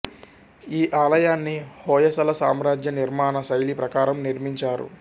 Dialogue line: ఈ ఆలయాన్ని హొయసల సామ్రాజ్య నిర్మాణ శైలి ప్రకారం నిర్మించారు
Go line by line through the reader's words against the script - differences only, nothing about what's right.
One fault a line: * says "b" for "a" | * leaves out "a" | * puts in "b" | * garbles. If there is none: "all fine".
all fine